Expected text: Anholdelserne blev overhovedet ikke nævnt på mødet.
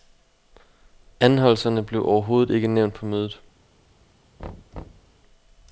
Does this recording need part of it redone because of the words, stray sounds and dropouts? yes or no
yes